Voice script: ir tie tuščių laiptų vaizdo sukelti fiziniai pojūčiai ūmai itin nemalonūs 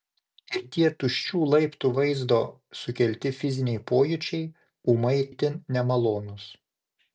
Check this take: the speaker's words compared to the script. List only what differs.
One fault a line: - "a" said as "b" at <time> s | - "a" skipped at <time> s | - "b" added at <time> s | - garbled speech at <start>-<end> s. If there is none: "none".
none